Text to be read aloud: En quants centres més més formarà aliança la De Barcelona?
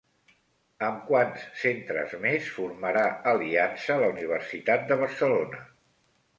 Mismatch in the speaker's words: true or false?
true